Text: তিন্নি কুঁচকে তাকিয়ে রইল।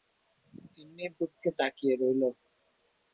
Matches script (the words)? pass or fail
pass